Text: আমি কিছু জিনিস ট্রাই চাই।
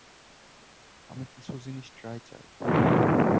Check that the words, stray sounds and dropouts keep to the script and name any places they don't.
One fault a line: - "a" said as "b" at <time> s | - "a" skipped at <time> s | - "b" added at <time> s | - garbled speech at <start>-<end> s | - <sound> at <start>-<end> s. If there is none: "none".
none